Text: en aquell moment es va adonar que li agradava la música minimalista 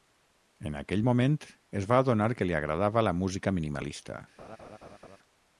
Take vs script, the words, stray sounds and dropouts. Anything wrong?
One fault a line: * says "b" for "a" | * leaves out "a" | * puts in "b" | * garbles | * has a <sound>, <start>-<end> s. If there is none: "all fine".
* has a laugh, 4.4-5.2 s